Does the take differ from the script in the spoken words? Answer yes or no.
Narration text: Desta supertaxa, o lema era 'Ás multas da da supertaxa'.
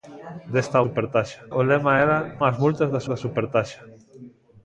no